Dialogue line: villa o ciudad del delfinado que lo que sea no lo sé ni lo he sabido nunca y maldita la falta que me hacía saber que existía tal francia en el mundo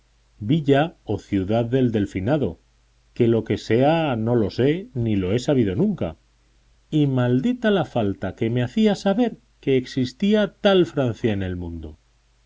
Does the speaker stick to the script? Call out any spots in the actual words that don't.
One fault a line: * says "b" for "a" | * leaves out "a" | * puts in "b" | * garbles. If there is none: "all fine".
all fine